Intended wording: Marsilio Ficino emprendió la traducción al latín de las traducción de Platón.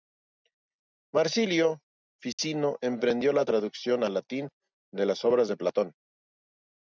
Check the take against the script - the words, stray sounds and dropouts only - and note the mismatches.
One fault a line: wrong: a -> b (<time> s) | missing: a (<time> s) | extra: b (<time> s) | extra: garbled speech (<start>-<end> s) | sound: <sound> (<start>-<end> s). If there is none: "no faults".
sound: dropout (2.3-2.4 s)
wrong: traducción -> obras (5.2 s)